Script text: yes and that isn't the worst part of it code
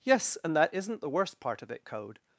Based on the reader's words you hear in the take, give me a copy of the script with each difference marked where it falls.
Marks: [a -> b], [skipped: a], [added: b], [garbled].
yes and that isn't the worst part of it code